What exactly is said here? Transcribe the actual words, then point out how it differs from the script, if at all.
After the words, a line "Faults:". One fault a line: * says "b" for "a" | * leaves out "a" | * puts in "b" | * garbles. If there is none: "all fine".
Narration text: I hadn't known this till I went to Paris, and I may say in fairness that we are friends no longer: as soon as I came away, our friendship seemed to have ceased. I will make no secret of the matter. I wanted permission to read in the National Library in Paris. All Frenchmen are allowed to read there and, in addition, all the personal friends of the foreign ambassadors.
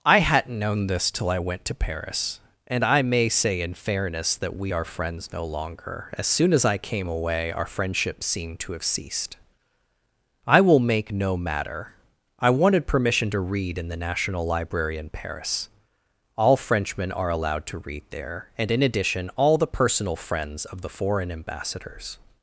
I hadn't known this till I went to Paris, and I may say in fairness that we are friends no longer: as soon as I came away, our friendship seemed to have ceased. I will make no matter. I wanted permission to read in the National Library in Paris. All Frenchmen are allowed to read there and, in addition, all the personal friends of the foreign ambassadors.
Faults:
* leaves out "secret of the"